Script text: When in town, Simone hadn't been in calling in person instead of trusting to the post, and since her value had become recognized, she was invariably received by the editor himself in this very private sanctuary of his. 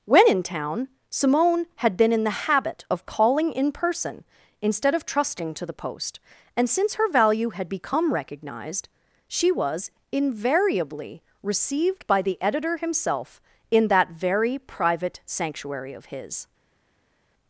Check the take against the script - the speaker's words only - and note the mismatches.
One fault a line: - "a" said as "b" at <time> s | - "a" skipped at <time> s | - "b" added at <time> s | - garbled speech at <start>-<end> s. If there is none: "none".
- "hadn't" said as "had" at 1.8 s
- "the habit of" added at 2.2 s
- "this" said as "that" at 13.9 s